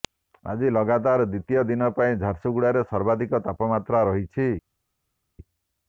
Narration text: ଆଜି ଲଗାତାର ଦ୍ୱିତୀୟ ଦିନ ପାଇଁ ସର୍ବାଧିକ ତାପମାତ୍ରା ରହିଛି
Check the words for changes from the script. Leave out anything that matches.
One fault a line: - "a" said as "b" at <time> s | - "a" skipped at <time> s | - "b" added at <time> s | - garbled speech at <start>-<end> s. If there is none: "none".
- "ଝାରସୁଗୁଡ଼ାରେ" added at 2.2 s